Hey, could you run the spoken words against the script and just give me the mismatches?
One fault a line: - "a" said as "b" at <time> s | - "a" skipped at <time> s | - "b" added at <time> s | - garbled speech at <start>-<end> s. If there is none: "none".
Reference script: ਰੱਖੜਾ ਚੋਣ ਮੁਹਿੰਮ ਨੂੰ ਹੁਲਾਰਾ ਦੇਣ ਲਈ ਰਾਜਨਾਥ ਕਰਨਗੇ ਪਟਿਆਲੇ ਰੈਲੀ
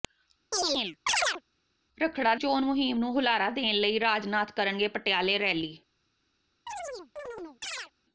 none